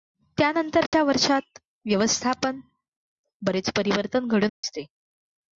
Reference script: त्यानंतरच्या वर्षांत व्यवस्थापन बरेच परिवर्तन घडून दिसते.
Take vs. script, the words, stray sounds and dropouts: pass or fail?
fail